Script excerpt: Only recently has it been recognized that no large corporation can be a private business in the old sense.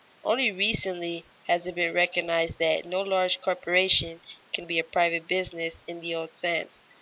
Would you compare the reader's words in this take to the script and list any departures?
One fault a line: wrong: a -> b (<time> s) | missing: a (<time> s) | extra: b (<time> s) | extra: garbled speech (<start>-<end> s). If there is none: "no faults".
no faults